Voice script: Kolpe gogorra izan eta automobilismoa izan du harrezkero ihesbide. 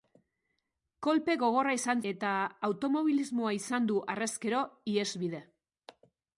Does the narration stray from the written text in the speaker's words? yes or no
no